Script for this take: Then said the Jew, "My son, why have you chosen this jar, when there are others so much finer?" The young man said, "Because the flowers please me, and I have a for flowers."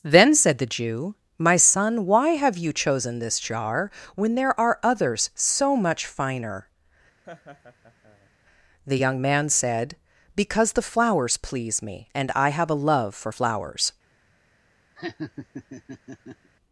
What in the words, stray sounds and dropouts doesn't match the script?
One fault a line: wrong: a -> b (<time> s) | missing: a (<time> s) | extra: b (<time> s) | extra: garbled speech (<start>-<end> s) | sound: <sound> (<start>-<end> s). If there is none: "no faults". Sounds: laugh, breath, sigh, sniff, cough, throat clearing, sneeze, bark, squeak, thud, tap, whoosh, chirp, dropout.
sound: laugh (7.2-8.3 s)
extra: love (12.8 s)
sound: laugh (15.0-16.5 s)